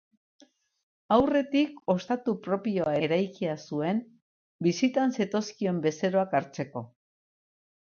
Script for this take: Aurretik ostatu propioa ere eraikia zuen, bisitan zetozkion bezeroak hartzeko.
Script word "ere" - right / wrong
wrong